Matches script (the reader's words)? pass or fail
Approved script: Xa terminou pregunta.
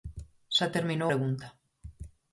pass